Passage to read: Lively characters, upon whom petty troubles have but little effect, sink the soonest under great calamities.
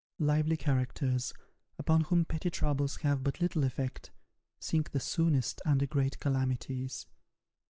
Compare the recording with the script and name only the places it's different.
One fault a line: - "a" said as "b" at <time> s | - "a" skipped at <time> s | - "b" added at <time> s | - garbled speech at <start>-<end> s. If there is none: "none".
none